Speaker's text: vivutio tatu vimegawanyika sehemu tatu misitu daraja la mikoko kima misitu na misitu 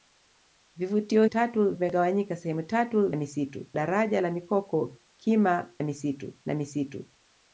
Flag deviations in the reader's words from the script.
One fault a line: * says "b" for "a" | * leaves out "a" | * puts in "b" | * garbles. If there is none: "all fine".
all fine